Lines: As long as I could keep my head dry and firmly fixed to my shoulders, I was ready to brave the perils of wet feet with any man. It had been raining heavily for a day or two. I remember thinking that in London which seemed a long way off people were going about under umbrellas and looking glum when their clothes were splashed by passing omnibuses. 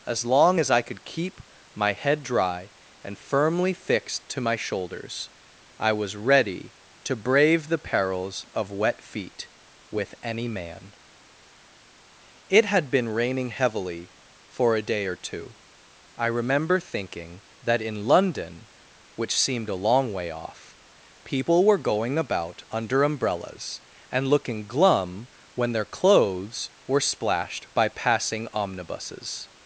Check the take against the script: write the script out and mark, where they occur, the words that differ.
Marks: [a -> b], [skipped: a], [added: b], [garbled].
As long as I could keep my head dry and firmly fixed to my shoulders, I was ready to brave the perils of wet feet with any man. It had been raining heavily for a day or two. I remember thinking that in London which seemed a long way off people were going about under umbrellas and looking glum when their clothes were splashed by passing omnibuses.